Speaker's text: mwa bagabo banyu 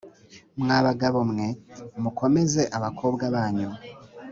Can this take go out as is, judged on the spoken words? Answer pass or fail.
fail